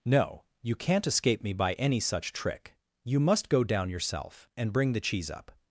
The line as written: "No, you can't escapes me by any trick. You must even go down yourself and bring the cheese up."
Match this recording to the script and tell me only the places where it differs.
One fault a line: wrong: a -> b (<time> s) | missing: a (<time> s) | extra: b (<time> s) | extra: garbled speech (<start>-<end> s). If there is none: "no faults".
wrong: escapes -> escape (1.1 s)
extra: such (2.0 s)
missing: even (3.5 s)